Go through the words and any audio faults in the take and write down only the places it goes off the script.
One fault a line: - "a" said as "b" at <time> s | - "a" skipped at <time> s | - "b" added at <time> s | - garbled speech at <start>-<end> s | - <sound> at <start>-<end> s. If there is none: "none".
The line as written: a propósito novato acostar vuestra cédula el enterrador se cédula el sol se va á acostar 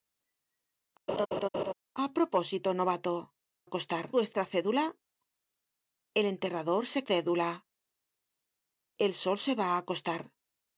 - laugh at 1.1-1.7 s